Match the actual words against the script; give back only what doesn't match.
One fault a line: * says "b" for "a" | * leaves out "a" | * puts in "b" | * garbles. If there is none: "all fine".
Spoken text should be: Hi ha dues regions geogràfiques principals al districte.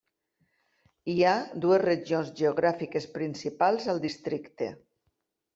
all fine